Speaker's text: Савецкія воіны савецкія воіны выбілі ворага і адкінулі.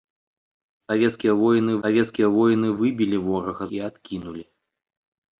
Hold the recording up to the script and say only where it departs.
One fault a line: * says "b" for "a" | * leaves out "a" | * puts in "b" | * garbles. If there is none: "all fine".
all fine